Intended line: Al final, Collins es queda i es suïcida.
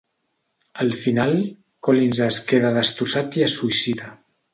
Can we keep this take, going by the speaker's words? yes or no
no